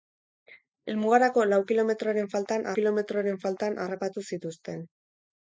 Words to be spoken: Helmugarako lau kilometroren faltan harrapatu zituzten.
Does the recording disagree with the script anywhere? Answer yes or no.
yes